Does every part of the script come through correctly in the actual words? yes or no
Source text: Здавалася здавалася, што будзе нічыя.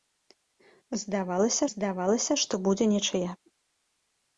yes